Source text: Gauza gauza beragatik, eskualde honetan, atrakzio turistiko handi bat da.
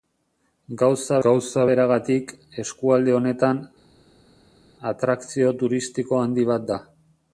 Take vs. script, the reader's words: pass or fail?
pass